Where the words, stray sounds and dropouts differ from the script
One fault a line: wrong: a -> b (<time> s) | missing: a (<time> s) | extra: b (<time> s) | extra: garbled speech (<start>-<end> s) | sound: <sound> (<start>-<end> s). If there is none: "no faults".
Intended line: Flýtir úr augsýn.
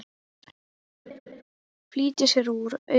sound: laugh (1.1-1.4 s)
extra: sér (2.3 s)